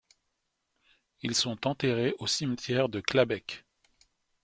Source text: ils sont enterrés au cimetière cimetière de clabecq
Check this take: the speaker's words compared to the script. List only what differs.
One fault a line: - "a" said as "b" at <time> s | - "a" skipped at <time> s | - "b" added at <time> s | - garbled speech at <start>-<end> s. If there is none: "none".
- "cimetière" skipped at 2.9 s